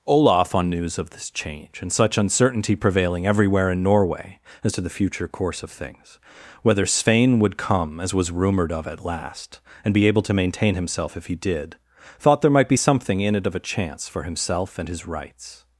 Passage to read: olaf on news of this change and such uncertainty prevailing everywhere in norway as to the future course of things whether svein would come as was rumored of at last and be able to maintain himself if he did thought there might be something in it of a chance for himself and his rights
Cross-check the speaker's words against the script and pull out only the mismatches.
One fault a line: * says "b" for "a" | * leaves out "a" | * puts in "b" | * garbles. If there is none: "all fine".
all fine